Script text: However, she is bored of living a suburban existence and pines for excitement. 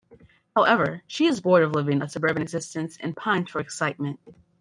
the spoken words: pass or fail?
pass